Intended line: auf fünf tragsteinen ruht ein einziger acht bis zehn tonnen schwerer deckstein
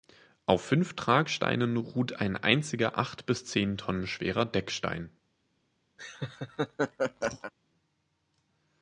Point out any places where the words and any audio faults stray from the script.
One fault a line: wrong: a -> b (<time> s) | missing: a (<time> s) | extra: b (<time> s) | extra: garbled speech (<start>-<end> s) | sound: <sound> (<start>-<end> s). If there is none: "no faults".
sound: laugh (6.0-7.5 s)